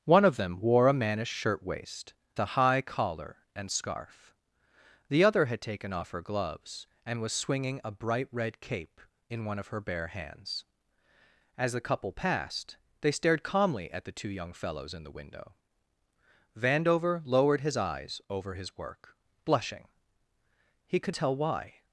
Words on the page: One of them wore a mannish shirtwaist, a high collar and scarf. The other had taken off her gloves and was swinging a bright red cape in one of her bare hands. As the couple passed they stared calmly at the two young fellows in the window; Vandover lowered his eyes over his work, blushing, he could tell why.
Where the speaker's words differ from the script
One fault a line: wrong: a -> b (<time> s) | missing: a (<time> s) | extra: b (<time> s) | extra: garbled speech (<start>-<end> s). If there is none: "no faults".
no faults